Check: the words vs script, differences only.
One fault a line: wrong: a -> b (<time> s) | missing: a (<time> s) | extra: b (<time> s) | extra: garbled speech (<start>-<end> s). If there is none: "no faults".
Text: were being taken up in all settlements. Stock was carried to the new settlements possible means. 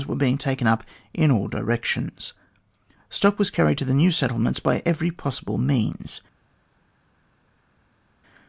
wrong: settlements -> directions (1.5 s)
extra: by every (4.6 s)